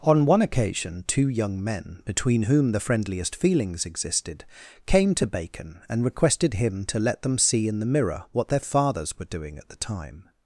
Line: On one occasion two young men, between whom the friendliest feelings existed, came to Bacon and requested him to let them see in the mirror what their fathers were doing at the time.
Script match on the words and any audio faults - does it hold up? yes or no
yes